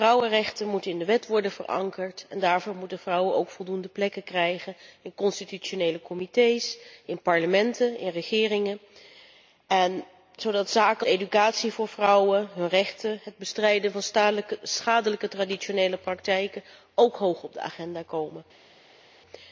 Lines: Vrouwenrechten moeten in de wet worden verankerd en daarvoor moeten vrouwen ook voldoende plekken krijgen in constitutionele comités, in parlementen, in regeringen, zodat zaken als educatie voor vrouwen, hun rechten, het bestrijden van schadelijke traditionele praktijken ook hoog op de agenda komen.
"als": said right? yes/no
no